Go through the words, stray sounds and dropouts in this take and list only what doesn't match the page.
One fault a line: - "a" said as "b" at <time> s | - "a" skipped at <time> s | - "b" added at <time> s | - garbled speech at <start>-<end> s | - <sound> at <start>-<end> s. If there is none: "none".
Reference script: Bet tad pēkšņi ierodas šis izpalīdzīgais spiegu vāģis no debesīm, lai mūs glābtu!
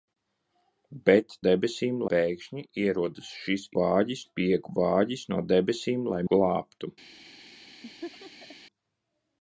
- "tad" said as "debesīm" at 1.5 s
- "izpalīdzīgais" said as "vāģis" at 3.8 s
- "mūs" skipped at 6.2 s
- laugh at 7.8-8.6 s